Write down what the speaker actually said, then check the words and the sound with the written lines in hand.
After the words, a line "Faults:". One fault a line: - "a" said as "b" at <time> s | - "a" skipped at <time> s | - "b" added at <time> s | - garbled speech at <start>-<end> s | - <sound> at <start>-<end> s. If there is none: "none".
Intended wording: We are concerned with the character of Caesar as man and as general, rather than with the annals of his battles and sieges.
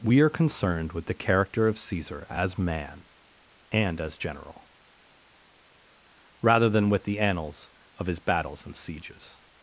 We are concerned with the character of Caesar as man and as general, rather than with the annals of his battles and sieges.
Faults:
none